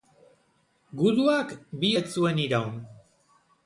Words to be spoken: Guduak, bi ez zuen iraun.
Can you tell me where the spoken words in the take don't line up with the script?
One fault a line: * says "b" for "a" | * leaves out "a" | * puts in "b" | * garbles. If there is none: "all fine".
all fine